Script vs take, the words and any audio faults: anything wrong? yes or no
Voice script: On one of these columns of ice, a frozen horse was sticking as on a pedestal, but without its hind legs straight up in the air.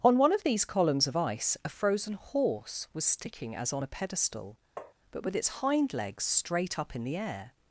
yes